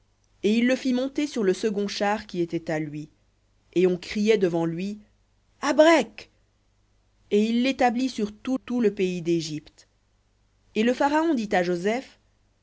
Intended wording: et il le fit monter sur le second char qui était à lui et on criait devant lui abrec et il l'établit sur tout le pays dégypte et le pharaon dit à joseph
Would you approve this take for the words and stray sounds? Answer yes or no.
no